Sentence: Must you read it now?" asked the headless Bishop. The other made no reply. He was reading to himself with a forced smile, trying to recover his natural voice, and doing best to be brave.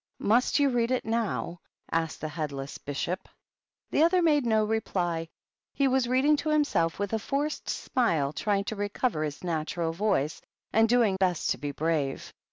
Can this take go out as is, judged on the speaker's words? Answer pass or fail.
pass